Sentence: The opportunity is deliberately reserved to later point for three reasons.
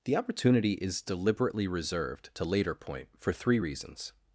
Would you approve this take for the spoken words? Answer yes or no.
yes